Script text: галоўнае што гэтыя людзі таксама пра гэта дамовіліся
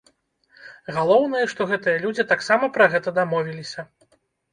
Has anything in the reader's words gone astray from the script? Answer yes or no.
no